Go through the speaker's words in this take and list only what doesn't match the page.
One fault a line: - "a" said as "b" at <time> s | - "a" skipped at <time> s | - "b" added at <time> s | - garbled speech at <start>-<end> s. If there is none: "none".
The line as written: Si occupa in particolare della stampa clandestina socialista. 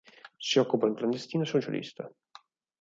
- "particolare della stampa" skipped at 0.9 s